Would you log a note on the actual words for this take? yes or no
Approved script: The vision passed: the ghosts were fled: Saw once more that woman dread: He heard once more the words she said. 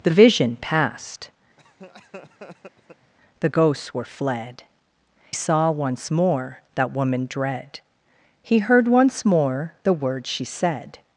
no